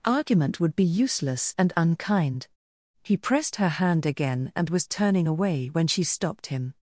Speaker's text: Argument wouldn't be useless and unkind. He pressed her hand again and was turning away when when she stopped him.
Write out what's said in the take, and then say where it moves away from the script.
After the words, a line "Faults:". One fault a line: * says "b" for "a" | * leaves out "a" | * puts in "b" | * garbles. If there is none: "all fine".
Argument would be useless and unkind. He pressed her hand again and was turning away when she stopped him.
Faults:
* says "would" for "wouldn't"
* leaves out "when"